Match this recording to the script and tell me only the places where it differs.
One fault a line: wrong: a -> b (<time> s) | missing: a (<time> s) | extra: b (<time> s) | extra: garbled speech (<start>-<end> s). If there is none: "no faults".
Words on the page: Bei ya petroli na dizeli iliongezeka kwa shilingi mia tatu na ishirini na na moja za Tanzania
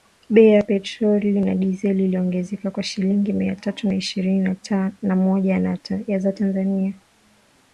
missing: na (5.2 s)